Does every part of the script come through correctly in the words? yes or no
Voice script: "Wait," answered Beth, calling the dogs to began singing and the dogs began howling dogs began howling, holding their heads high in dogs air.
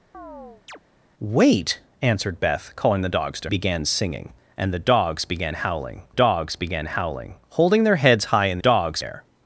yes